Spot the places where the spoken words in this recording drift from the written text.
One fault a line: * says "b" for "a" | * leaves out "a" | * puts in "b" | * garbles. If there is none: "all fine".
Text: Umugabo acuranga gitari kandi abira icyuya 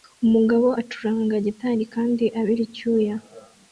all fine